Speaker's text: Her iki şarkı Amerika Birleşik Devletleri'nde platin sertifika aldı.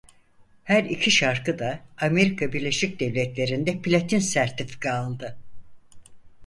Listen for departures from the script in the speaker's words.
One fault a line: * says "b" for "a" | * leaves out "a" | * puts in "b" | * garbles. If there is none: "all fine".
* puts in "da"